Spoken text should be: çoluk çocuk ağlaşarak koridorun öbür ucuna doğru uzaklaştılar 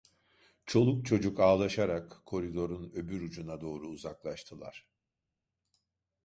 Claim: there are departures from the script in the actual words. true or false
false